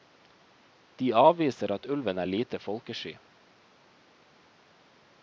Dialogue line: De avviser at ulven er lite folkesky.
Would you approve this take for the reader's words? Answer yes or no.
yes